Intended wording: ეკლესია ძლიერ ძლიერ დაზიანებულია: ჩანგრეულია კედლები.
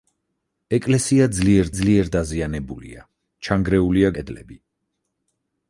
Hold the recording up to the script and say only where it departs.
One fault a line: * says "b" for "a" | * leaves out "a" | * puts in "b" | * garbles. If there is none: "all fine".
all fine